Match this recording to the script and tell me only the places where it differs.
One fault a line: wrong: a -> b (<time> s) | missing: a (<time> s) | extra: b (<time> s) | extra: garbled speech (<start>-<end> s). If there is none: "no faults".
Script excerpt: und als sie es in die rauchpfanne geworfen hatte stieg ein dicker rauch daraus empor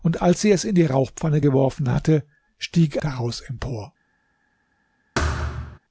missing: ein dicker rauch (3.0 s)